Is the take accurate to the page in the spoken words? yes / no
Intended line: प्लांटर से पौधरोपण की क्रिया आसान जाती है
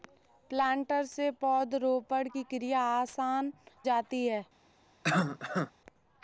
yes